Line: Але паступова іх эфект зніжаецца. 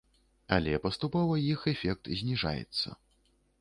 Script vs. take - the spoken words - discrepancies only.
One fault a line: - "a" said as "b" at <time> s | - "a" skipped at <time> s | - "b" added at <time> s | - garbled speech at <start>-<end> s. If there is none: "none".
none